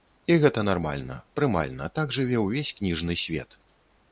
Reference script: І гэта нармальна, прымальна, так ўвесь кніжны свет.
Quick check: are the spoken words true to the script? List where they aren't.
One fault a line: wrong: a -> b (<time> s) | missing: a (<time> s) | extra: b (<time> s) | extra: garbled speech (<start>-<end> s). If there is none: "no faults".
extra: жыве (2.2 s)